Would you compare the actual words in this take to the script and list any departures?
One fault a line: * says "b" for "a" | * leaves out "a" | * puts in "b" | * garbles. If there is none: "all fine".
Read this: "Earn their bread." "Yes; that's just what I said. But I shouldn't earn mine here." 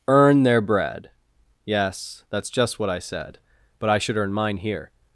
* says "should" for "shouldn't"